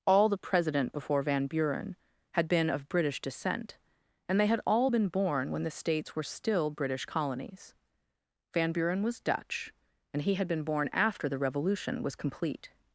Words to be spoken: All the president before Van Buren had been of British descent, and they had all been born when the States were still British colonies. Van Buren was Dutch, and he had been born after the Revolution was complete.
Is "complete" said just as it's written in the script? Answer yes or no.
yes